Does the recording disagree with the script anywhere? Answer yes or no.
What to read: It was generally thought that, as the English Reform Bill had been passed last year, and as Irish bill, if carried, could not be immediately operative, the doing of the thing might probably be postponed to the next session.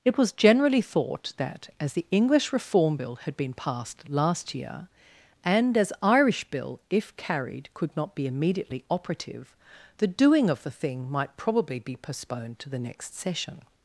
no